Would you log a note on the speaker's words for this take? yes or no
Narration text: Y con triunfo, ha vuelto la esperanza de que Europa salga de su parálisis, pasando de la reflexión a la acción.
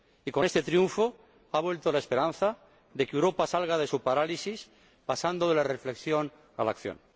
yes